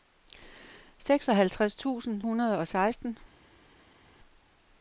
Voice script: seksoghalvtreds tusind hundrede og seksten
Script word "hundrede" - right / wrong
right